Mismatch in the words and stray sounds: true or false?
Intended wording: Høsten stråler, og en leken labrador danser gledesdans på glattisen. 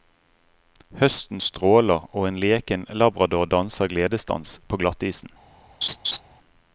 true